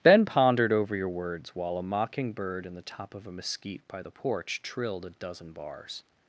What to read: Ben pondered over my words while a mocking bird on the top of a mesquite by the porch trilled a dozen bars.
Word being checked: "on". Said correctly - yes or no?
no